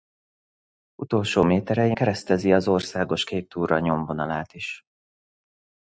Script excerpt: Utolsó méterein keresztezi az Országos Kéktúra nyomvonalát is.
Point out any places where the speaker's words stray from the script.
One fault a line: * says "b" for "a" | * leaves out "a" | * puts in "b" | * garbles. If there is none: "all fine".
all fine